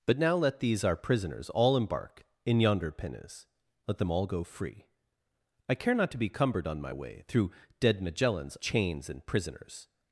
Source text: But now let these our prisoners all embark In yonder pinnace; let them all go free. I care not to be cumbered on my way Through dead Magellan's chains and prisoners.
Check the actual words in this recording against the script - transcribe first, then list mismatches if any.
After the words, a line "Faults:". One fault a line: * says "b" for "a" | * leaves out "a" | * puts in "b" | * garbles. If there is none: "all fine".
But now let these our prisoners all embark In yonder pinnace; let them all go free. I care not to be cumbered on my way Through dead Magellan's chains and prisoners.
Faults:
all fine